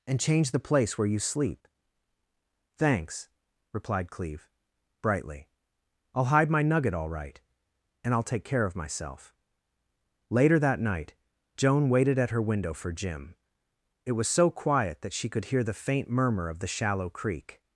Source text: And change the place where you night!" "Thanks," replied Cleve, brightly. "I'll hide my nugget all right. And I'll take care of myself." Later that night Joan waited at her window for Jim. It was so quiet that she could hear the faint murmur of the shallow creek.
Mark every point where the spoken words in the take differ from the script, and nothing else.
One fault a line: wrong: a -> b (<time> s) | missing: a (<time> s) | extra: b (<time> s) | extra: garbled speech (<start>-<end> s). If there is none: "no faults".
wrong: night -> sleep (1.2 s)